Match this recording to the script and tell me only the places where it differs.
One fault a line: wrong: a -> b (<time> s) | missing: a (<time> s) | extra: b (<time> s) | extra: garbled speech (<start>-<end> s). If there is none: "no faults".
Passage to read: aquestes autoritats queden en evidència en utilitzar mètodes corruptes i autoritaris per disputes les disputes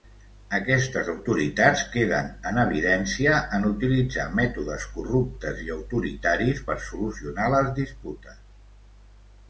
wrong: disputes -> solucionar (6.9 s)